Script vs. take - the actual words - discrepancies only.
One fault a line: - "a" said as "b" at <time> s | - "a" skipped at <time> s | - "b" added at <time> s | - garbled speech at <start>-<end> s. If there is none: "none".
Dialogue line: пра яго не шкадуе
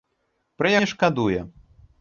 - "яго" skipped at 0.7 s